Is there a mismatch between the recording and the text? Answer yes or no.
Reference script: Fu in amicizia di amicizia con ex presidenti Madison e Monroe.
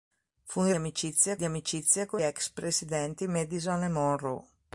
no